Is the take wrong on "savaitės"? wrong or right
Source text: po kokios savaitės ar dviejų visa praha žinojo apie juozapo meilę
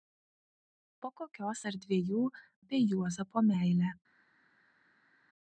wrong